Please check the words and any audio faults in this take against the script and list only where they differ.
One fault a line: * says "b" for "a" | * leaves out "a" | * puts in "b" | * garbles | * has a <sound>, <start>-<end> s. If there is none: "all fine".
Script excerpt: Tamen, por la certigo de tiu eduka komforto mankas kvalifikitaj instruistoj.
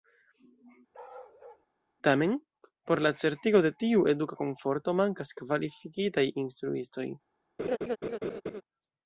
* has a bark, 0.9-1.7 s
* has a laugh, 7.6-8.6 s